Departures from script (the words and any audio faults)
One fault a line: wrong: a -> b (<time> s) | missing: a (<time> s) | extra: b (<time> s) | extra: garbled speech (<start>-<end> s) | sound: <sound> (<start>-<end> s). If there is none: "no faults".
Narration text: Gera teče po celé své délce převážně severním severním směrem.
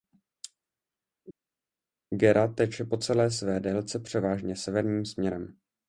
missing: severním (5.1 s)